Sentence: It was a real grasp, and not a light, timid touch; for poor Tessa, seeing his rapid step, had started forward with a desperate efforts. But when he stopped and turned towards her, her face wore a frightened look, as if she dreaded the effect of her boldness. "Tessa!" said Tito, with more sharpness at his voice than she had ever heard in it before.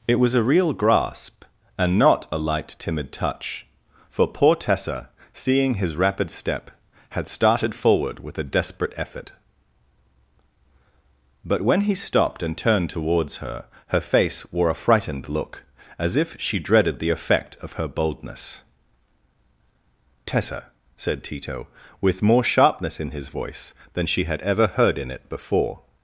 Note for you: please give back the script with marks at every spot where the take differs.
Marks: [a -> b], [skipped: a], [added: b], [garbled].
It was a real grasp, and not a light, timid touch; for poor Tessa, seeing his rapid step, had started forward with a desperate [efforts. -> effort] But when he stopped and turned towards her, her face wore a frightened look, as if she dreaded the effect of her boldness. "Tessa!" said Tito, with more sharpness [at -> in] his voice than she had ever heard in it before.